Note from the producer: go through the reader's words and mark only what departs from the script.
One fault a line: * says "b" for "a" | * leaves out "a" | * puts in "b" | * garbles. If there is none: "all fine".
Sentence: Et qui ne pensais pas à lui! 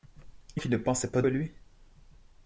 all fine